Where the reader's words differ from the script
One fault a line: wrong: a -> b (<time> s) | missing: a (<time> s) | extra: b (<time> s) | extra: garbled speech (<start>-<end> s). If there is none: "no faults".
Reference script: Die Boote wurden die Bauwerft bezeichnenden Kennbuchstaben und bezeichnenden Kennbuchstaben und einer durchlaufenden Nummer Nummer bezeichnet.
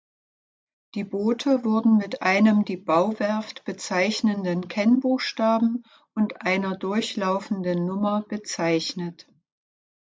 extra: mit einem (2.0 s)
missing: bezeichnenden Kennbuchstaben und (6.4 s)
missing: Nummer (8.2 s)